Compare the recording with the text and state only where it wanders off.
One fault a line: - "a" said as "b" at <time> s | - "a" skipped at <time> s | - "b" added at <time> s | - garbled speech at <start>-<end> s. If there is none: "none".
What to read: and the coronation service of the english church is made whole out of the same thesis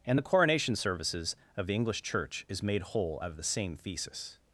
- "service" said as "services" at 0.8 s